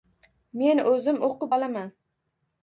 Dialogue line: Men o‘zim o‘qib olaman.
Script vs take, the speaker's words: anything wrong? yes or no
no